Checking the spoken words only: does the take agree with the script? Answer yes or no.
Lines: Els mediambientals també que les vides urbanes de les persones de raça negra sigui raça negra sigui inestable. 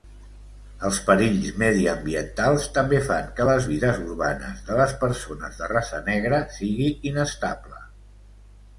no